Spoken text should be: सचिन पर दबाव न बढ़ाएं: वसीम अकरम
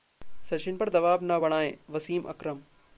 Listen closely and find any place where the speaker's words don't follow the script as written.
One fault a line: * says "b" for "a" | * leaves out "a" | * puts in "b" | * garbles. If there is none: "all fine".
all fine